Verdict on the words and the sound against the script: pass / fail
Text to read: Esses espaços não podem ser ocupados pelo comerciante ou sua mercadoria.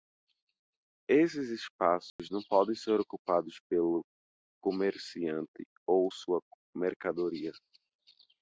fail